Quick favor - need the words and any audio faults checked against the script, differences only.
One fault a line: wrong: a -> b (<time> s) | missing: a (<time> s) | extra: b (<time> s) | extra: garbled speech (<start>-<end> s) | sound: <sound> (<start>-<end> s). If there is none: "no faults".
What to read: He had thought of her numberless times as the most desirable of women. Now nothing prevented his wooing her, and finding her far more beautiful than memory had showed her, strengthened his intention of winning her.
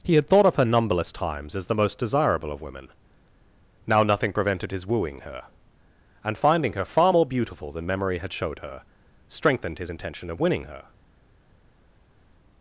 no faults